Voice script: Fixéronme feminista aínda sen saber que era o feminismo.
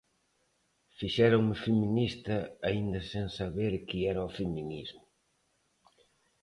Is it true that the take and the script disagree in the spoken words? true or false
false